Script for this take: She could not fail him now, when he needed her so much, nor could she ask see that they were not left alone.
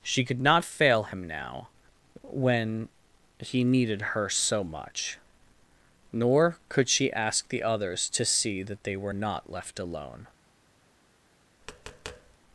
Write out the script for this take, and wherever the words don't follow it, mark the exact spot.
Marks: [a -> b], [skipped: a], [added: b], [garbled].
She could not fail him now, when he needed her so much, nor could she ask [added: the others to] see that they were not left alone.